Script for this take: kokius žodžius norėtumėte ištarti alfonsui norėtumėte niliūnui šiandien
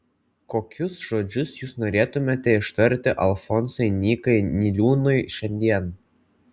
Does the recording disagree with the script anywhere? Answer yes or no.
yes